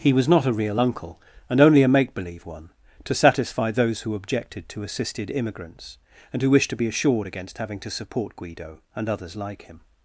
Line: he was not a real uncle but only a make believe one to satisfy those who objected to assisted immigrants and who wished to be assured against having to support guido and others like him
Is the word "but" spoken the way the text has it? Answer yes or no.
no